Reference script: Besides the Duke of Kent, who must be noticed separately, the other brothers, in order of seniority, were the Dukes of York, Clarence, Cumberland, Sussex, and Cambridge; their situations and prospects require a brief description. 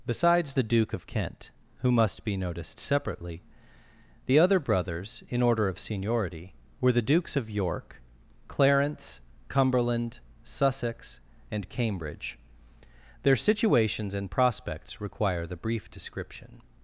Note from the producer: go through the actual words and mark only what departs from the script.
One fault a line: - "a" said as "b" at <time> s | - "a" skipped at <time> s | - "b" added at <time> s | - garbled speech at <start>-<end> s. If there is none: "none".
- "a" said as "the" at 15.5 s